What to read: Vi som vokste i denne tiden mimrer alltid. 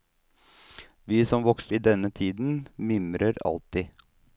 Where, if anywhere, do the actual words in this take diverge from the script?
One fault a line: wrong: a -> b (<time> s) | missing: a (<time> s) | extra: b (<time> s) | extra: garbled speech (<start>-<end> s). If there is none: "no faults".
no faults